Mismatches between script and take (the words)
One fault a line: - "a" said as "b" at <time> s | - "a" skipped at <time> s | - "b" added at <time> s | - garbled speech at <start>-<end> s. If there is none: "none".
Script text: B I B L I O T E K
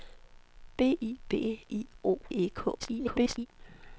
- "L" skipped at 1.6 s
- "T" skipped at 2.2 s
- garbled speech at 2.8-3.5 s